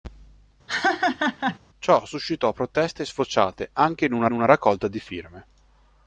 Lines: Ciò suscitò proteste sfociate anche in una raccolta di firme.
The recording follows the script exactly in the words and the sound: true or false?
false